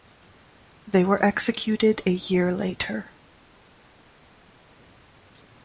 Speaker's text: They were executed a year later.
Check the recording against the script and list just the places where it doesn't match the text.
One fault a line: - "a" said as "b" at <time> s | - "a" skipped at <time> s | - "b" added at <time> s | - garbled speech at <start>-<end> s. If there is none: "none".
none